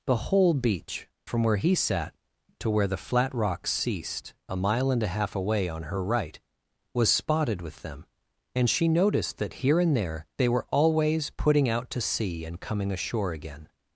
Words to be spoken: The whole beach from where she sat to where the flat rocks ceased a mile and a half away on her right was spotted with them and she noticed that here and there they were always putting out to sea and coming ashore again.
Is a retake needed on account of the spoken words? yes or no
yes